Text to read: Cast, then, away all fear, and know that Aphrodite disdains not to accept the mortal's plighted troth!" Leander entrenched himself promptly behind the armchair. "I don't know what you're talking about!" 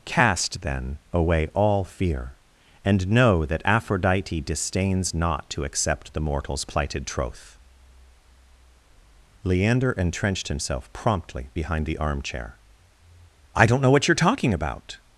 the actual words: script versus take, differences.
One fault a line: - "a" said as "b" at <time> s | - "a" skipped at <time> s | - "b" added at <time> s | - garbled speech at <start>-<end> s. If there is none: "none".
none